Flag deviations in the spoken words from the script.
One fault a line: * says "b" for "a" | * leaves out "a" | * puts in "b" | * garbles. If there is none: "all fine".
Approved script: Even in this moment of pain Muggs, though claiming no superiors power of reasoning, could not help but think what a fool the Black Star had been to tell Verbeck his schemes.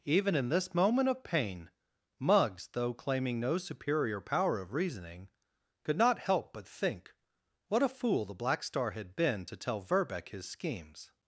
* says "superior" for "superiors"